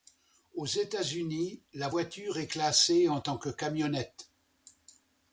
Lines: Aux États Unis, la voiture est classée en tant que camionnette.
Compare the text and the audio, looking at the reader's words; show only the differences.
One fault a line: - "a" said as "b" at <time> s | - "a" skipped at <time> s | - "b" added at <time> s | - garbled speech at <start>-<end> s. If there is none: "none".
none